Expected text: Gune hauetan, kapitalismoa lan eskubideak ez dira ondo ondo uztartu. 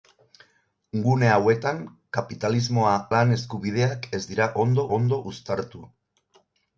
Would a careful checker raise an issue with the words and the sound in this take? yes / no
no